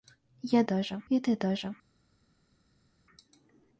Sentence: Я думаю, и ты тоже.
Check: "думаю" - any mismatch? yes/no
yes